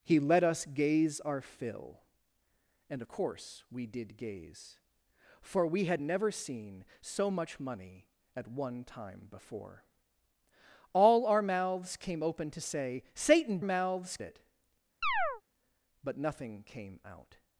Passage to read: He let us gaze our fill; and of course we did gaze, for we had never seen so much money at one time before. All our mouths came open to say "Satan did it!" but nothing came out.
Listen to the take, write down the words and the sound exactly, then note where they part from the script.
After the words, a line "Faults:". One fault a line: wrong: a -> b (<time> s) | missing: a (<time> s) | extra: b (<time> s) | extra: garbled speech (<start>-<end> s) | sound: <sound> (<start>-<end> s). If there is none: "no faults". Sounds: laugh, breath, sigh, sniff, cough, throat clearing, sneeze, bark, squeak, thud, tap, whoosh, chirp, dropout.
He let us gaze our fill; and course we did gaze, for we had never seen so much money at one time before. All our mouths came open to say "Satan mouths it!" but nothing came out.
Faults:
missing: of (3.0 s)
wrong: did -> mouths (13.6 s)
sound: chirp (15.0-15.4 s)